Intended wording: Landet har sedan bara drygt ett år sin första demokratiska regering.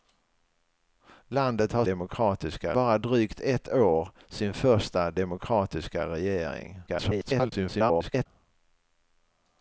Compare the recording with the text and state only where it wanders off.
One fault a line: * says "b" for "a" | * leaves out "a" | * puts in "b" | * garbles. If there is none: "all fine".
* says "demokratiska" for "sedan"
* garbles